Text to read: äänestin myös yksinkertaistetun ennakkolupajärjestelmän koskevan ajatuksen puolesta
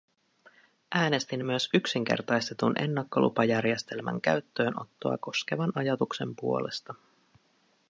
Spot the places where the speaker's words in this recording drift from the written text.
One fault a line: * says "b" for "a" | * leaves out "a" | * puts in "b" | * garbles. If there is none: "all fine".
* puts in "käyttöönottoa"